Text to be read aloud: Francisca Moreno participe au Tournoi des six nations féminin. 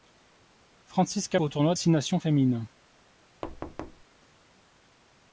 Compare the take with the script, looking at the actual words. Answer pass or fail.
fail